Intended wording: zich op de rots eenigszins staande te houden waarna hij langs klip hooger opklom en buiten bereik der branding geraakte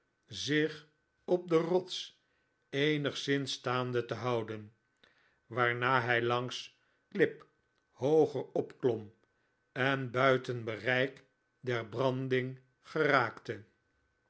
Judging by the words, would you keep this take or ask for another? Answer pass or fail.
pass